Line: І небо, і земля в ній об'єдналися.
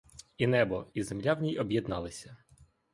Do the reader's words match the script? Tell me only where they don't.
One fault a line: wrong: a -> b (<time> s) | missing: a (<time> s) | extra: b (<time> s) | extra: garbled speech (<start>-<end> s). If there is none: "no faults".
no faults